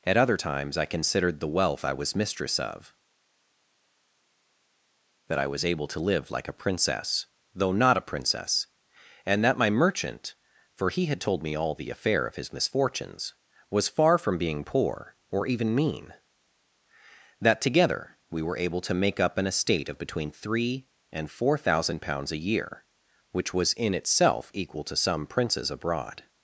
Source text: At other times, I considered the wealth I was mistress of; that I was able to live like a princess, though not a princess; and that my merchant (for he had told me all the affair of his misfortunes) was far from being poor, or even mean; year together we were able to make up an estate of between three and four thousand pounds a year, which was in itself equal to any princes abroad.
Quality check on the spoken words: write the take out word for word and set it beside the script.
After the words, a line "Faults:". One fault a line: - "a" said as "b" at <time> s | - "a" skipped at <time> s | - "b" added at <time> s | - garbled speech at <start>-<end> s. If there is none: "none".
At other times, I considered the wealth I was mistress of; that I was able to live like a princess, though not a princess; and that my merchant (for he had told me all the affair of his misfortunes) was far from being poor, or even mean; that together we were able to make up an estate of between three and four thousand pounds a year, which was in itself equal to some princes abroad.
Faults:
- "year" said as "that" at 17.4 s
- "any" said as "some" at 25.0 s